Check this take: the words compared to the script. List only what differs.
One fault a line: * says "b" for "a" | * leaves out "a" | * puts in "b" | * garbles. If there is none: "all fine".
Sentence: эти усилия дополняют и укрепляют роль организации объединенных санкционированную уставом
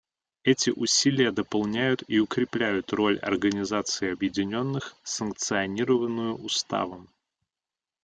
all fine